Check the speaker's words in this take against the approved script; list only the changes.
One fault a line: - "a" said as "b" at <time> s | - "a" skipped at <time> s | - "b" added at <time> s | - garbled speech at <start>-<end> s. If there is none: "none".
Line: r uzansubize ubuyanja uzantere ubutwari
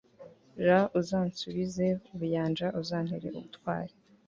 none